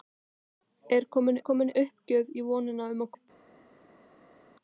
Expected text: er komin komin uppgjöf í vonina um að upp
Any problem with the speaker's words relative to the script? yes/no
no